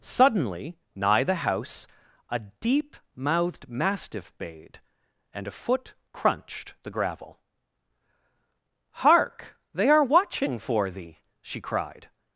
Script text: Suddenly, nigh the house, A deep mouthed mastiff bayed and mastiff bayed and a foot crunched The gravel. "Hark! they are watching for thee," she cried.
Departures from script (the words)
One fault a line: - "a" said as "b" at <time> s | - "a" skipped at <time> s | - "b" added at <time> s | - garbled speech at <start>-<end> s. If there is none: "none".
- "mastiff bayed and" skipped at 5.5 s